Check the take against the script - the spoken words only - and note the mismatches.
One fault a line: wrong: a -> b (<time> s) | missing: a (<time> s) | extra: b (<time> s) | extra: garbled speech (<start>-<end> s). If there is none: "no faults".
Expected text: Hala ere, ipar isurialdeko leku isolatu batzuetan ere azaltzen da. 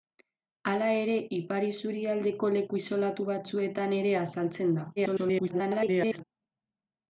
extra: garbled speech (5.0-6.2 s)